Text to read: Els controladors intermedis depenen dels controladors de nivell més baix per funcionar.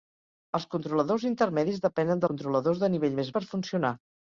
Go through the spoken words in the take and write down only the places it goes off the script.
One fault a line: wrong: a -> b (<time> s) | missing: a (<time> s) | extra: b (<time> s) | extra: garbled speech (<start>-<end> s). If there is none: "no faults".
missing: dels (2.2 s)
missing: baix (3.3 s)